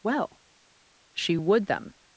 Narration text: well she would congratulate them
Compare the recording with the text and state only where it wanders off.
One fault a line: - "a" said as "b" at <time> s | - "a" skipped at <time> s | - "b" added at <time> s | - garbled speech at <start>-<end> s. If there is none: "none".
- "congratulate" skipped at 1.7 s